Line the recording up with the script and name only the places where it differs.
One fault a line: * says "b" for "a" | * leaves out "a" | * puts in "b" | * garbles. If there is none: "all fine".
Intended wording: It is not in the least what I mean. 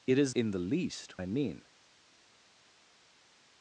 * leaves out "not"
* leaves out "what"